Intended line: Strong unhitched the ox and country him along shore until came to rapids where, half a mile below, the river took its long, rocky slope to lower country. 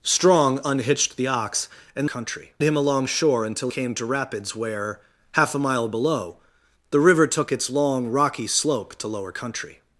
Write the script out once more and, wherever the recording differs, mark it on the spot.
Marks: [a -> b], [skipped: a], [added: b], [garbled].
Strong unhitched the ox and country him along shore until came to rapids where, half a mile below, the river took its long, rocky slope to lower country.